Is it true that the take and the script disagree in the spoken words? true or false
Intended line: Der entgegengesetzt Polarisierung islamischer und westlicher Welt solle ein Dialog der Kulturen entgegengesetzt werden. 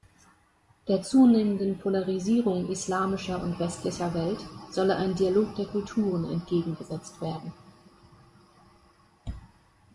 true